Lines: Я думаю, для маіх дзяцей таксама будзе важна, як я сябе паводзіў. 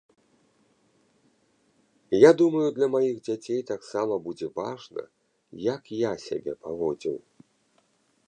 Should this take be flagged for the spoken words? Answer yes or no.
no